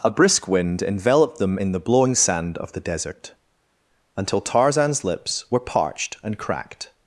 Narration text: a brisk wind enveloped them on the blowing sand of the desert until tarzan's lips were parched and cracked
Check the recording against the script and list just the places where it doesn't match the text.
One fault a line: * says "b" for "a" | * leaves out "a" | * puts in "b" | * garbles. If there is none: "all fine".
* says "in" for "on"